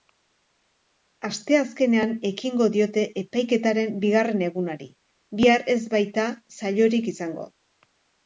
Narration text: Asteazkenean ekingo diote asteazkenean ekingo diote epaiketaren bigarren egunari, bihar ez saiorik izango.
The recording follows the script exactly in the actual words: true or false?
false